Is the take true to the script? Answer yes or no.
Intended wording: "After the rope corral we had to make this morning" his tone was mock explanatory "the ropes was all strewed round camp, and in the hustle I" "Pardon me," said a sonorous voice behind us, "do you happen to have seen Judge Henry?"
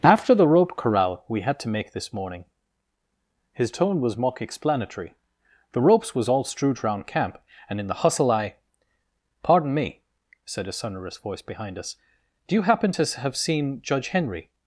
yes